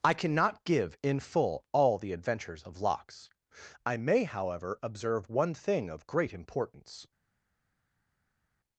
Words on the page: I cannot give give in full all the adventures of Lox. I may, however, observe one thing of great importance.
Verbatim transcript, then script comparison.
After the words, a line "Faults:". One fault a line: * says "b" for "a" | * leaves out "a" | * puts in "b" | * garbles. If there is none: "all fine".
I cannot give in full all the adventures of Lox. I may, however, observe one thing of great importance.
Faults:
* leaves out "give"